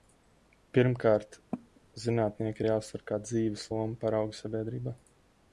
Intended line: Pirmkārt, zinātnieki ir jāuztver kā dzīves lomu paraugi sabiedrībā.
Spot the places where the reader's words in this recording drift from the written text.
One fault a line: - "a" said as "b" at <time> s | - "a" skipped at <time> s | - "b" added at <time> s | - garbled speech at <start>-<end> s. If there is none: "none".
none